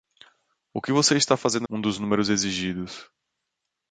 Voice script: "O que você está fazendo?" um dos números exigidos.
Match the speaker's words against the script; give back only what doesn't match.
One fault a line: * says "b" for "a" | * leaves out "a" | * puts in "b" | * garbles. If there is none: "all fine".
all fine